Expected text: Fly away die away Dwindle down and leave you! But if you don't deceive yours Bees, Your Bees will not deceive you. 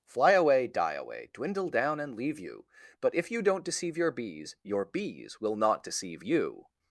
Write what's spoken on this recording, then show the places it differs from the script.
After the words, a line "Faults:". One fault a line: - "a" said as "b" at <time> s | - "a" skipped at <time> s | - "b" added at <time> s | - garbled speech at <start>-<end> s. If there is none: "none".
Fly away die away Dwindle down and leave you! But if you don't deceive your Bees, Your Bees will not deceive you.
Faults:
- "yours" said as "your" at 4.0 s